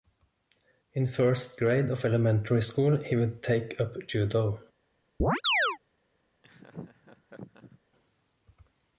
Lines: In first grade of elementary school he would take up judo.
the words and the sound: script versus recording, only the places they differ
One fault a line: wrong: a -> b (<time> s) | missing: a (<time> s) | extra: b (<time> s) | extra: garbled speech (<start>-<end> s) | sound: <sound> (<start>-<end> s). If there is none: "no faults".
sound: chirp (5.2-5.8 s)
sound: laugh (6.4-7.8 s)